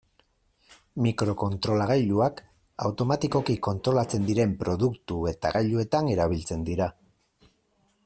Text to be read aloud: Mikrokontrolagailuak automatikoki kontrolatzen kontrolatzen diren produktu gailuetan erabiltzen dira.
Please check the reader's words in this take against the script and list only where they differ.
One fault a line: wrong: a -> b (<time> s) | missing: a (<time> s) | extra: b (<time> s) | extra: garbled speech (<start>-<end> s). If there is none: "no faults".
missing: kontrolatzen (4.3 s)
extra: eta (5.3 s)